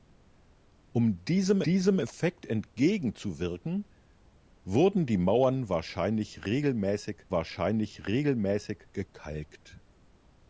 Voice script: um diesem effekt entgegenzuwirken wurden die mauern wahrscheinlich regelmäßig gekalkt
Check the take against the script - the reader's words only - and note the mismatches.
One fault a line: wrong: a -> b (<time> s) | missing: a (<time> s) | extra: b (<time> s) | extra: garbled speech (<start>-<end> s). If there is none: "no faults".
extra: diesem (1.6 s)
extra: wahrscheinlich regelmäßig (7.3 s)